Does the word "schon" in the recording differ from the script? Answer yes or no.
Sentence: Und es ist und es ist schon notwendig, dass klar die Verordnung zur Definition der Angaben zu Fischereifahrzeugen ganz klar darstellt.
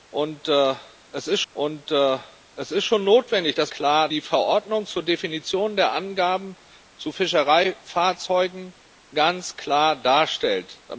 no